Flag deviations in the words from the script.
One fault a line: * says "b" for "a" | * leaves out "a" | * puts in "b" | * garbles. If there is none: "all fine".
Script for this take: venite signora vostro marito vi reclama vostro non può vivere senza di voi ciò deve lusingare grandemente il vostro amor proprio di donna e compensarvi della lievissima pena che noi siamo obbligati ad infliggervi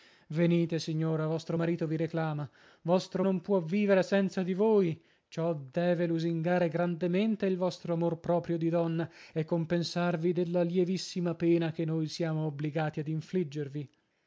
all fine